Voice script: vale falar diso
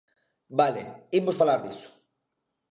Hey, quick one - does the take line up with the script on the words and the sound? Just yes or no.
no